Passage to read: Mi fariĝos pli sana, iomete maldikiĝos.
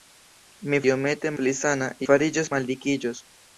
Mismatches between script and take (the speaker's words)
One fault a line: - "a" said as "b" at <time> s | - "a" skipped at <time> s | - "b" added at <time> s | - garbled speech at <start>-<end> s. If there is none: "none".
- "fariĝos" said as "iomete" at 0.9 s
- "iomete" said as "fariĝos" at 2.1 s